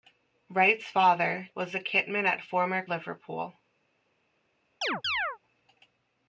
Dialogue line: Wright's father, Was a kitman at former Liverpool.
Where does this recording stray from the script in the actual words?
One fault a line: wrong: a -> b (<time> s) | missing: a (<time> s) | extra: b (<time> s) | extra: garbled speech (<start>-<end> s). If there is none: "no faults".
no faults